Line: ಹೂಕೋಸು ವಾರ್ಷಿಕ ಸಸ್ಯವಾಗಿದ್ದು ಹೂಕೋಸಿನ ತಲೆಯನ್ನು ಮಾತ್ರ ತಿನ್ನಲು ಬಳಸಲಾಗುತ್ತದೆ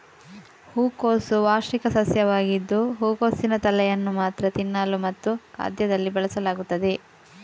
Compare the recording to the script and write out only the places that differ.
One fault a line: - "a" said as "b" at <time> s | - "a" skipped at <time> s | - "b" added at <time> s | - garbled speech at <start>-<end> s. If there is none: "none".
- "ಮತ್ತು ಖಾದ್ಯದಲ್ಲಿ" added at 5.0 s